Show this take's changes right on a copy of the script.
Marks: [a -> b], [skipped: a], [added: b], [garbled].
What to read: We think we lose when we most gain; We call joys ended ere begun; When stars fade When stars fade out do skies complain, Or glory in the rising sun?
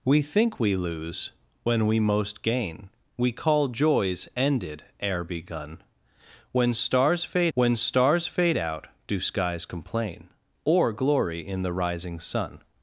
We think we lose when we most gain; We call joys ended ere begun; When stars fade When stars fade out do skies complain, Or glory in the rising sun?